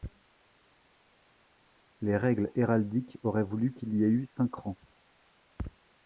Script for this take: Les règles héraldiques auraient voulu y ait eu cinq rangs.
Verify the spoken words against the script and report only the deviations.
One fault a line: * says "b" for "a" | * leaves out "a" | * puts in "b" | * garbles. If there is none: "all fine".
* puts in "qu'il"